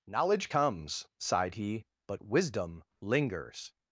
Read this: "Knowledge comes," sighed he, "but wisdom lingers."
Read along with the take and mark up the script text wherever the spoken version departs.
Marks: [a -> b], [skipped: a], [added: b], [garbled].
"Knowledge comes," sighed he, "but wisdom lingers."